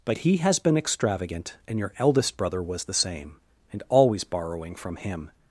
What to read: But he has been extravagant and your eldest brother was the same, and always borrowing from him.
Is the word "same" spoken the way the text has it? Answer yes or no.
yes